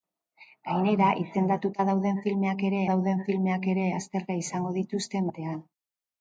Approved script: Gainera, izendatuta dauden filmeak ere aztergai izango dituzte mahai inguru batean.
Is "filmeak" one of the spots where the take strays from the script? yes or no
no